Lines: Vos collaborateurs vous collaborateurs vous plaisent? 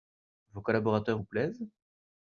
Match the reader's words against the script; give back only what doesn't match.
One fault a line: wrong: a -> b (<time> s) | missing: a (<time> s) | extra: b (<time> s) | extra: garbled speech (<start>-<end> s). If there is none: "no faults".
missing: collaborateurs vous (1.2 s)